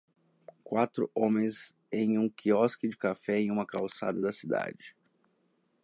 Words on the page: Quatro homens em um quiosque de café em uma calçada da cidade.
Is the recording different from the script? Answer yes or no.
no